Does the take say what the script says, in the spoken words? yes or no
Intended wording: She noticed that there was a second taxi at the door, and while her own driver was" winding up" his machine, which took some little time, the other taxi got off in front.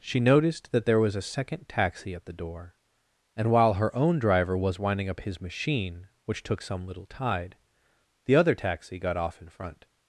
no